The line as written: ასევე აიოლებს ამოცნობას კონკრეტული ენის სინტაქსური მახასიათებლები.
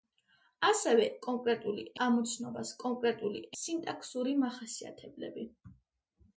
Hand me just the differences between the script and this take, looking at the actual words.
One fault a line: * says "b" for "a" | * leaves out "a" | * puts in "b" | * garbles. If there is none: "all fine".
* says "კონკრეტული" for "აიოლებს"
* leaves out "ენის"